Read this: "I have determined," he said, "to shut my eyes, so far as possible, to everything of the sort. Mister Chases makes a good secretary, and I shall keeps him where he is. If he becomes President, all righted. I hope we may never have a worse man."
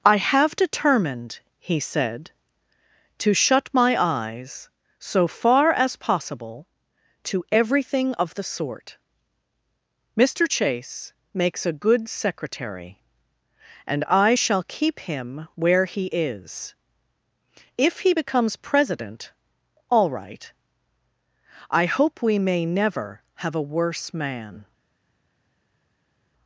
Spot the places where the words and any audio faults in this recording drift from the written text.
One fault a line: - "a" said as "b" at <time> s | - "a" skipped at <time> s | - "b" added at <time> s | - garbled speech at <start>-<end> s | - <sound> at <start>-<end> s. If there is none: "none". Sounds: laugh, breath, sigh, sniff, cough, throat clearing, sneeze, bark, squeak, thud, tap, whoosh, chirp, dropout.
- "Chases" said as "Chase" at 10.5 s
- "keeps" said as "keep" at 14.6 s
- "righted" said as "right" at 20.1 s